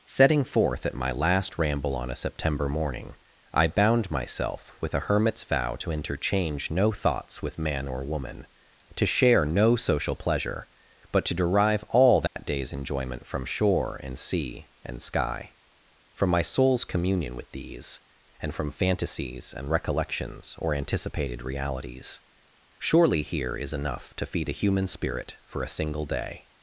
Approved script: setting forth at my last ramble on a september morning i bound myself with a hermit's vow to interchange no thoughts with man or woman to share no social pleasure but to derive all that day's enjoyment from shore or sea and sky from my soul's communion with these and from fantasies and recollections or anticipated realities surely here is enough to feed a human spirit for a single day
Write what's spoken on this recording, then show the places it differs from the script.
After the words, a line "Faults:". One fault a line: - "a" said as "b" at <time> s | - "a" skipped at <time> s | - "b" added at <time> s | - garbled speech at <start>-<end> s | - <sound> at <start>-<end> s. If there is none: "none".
setting forth at my last ramble on a september morning i bound myself with a hermit's vow to interchange no thoughts with man or woman to share no social pleasure but to derive all that day's enjoyment from shore and sea and sky from my soul's communion with these and from fantasies and recollections or anticipated realities surely here is enough to feed a human spirit for a single day
Faults:
- dropout at 12.3-12.4 s
- "or" said as "and" at 14.0 s